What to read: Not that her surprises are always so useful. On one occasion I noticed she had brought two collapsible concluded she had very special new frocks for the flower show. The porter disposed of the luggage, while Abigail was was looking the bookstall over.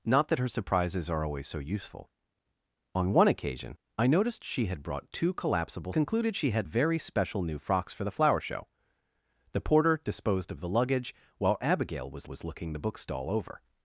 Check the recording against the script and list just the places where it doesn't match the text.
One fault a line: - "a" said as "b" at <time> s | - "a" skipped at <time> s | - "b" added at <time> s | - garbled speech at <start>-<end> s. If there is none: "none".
none